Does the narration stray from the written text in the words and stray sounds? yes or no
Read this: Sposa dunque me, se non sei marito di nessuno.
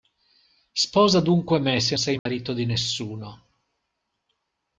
yes